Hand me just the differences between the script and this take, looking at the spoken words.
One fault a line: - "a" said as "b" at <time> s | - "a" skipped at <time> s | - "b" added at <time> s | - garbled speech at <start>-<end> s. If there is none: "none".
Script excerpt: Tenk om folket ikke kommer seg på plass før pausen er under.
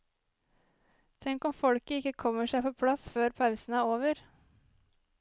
- "under" said as "over" at 4.0 s